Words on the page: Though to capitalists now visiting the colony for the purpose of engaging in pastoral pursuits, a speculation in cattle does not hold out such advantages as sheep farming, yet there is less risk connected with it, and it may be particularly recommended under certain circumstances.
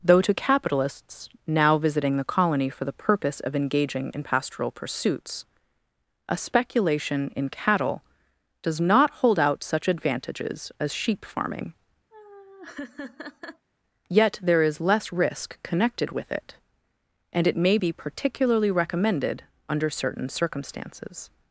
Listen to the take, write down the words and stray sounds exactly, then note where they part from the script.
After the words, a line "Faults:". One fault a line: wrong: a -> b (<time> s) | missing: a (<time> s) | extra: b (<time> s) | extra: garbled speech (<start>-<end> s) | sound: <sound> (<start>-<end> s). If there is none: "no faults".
Though to capitalists now visiting the colony for the purpose of engaging in pastoral pursuits, a speculation in cattle does not hold out such advantages as sheep farming, yet there is less risk connected with it, and it may be particularly recommended under certain circumstances.
Faults:
sound: laugh (12.1-13.7 s)